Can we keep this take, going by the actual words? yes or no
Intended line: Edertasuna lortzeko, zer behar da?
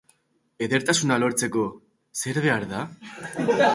yes